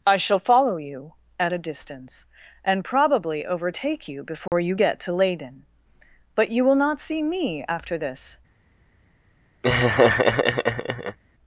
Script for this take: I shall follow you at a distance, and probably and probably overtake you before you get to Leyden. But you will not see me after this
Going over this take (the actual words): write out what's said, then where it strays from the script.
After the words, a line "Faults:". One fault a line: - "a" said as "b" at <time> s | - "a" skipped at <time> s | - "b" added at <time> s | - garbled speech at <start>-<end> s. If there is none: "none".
I shall follow you at a distance, and probably overtake you before you get to Leyden. But you will not see me after this
Faults:
- "and probably" skipped at 3.5 s